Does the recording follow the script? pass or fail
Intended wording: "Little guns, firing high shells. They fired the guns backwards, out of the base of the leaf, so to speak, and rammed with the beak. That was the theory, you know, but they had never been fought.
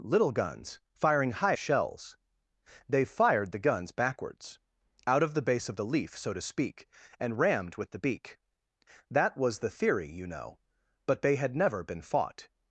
pass